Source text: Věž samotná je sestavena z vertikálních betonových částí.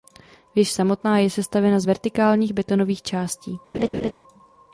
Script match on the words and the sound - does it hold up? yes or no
no